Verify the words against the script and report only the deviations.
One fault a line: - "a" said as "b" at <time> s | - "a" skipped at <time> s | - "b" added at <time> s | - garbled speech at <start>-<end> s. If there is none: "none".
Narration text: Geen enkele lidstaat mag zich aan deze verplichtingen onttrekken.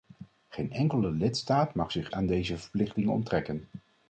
none